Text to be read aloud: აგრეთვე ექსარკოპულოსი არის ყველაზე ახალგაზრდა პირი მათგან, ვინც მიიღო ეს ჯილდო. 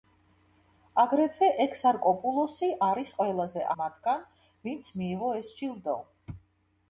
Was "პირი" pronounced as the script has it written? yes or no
no